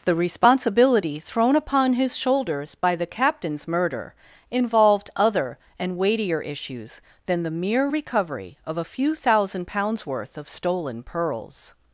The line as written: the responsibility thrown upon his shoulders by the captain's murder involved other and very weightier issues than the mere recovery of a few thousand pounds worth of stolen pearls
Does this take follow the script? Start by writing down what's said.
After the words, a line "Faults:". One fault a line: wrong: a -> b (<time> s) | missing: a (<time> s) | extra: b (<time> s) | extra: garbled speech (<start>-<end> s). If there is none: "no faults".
the responsibility thrown upon his shoulders by the captain's murder involved other and weightier issues than the mere recovery of a few thousand pounds worth of stolen pearls
Faults:
missing: very (6.0 s)